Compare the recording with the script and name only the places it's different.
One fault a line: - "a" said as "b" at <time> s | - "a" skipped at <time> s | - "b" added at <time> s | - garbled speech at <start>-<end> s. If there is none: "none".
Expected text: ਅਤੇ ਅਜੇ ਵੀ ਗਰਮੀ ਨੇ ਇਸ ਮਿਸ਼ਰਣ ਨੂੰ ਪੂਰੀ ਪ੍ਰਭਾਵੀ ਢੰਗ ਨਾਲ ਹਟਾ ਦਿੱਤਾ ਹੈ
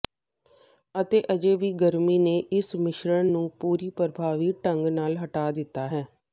none